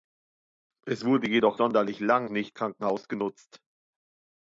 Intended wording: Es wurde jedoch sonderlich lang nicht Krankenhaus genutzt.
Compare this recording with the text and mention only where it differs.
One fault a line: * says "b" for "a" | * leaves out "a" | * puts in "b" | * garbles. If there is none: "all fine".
all fine